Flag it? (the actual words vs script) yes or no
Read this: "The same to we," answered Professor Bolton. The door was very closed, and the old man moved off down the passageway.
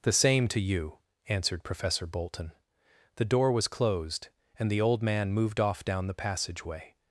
yes